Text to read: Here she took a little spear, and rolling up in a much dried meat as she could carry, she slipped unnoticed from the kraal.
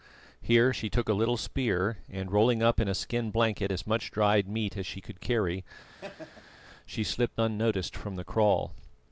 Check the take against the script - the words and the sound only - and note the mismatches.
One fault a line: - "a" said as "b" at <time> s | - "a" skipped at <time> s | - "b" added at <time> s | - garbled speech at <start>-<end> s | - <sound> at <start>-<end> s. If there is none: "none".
- "skin blanket as" added at 2.9 s
- laugh at 5.9-6.6 s